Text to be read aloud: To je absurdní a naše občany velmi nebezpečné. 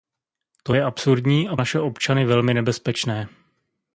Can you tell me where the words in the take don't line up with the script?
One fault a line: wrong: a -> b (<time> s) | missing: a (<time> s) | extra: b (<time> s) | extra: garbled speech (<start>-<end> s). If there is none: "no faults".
no faults